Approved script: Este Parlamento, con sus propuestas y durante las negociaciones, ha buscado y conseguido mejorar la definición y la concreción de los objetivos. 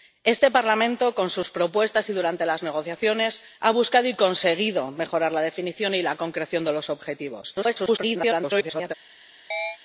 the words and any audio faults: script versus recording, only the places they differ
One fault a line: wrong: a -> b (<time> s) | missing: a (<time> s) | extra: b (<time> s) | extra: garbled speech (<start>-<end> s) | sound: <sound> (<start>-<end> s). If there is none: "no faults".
extra: garbled speech (7.5-8.9 s)
sound: chirp (9.5-9.8 s)